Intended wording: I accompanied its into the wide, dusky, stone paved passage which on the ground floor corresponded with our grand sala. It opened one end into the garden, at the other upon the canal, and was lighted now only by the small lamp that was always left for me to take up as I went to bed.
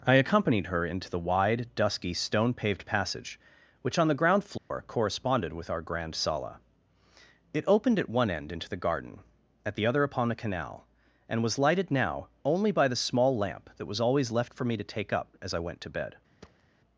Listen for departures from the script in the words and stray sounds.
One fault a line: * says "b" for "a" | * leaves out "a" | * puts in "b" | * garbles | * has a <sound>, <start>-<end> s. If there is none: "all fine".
* says "her" for "its"
* has a dropout, 4.6-4.7 s
* puts in "at"
* has a thud, 16.4-16.6 s